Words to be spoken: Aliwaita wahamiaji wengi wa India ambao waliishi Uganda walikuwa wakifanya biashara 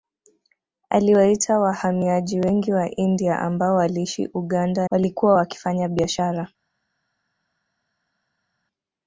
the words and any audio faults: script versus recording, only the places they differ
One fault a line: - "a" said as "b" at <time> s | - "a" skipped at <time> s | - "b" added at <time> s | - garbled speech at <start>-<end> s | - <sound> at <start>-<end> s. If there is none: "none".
none